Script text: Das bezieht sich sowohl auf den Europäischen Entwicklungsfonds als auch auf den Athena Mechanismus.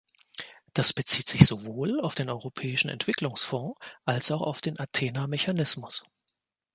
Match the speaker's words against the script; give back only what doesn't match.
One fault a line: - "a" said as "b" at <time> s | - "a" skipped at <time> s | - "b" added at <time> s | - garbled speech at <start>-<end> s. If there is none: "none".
none